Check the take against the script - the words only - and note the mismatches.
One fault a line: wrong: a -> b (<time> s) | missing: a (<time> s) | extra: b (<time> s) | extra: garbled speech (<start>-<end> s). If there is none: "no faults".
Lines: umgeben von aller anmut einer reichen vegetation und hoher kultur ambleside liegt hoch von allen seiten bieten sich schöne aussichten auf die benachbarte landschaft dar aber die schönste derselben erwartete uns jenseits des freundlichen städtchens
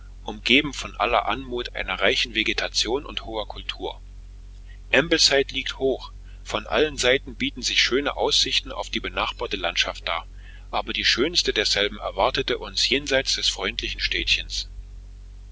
no faults